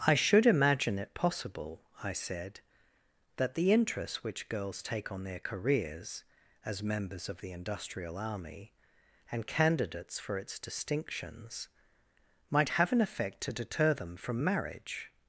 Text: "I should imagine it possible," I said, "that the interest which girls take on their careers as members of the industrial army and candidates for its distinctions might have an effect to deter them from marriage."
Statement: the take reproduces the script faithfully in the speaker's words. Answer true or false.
true